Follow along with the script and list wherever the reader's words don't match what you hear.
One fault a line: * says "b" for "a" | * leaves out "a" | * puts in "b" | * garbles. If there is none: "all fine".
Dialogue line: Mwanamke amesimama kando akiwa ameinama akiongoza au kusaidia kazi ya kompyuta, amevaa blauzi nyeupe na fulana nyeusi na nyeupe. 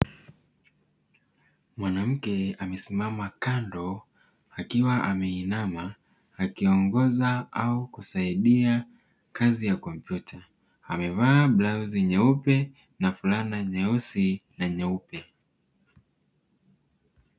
all fine